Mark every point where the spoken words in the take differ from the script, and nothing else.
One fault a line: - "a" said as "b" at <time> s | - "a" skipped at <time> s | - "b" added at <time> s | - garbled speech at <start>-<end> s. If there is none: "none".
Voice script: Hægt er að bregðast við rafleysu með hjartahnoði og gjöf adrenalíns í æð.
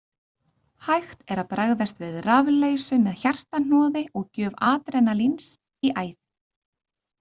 none